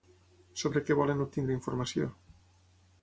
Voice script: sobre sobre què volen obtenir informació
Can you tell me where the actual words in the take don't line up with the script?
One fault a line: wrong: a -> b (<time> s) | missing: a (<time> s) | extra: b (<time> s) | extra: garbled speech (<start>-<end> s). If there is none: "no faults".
missing: sobre (0.8 s)